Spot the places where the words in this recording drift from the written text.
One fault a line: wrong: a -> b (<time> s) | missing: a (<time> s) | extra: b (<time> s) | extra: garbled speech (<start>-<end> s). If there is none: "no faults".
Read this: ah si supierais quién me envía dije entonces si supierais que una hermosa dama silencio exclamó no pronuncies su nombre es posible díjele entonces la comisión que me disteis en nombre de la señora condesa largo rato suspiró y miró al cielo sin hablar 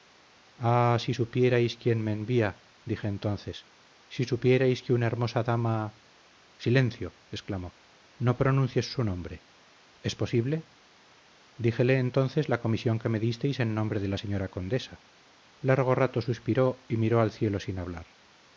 no faults